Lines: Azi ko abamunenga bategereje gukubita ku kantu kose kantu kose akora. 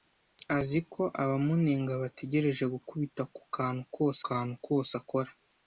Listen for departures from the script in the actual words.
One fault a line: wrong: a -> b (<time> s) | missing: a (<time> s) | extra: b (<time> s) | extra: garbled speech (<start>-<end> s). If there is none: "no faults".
no faults